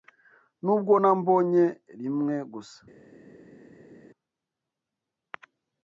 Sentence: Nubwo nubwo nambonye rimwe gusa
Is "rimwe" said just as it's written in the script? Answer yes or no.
yes